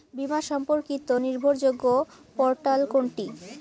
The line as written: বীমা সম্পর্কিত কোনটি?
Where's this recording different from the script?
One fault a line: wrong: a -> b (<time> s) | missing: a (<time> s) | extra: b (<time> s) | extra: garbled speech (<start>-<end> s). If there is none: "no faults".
extra: নির্ভরযোগ্য পোর্টাল (1.2 s)